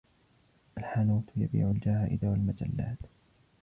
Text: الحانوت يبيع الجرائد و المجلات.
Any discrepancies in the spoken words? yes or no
no